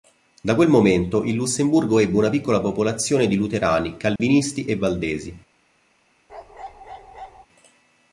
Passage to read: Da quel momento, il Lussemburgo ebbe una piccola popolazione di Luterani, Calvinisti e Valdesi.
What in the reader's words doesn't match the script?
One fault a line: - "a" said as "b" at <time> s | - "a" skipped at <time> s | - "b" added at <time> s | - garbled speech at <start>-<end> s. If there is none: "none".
none